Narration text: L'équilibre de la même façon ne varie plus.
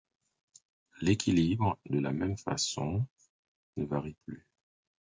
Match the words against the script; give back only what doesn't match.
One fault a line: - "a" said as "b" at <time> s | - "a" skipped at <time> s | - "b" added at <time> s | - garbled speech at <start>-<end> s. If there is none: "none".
none